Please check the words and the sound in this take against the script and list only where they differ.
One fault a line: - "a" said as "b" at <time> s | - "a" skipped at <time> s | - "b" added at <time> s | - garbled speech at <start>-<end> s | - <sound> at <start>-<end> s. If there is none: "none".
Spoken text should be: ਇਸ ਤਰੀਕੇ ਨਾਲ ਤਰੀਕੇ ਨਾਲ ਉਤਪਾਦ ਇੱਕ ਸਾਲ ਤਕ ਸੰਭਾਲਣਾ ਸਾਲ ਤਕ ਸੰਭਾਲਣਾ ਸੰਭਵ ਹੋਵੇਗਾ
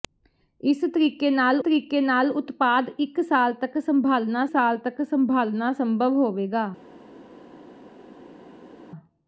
none